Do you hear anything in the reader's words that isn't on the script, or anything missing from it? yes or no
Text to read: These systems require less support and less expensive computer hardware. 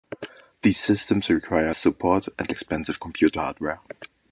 yes